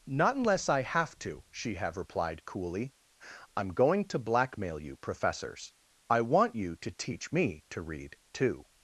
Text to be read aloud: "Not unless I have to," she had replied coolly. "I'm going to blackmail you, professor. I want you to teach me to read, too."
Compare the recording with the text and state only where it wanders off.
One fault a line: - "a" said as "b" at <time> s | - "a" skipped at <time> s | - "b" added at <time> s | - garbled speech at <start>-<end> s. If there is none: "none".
- "had" said as "have" at 1.8 s
- "professor" said as "professors" at 5.0 s